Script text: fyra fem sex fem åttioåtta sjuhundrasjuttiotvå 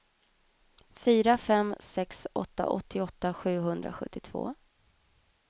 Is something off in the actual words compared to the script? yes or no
yes